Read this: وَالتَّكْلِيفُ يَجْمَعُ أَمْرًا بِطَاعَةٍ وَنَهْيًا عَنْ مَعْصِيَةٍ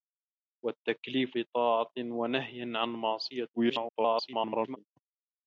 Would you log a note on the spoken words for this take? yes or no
yes